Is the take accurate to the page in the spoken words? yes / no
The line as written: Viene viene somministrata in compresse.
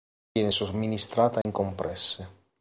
no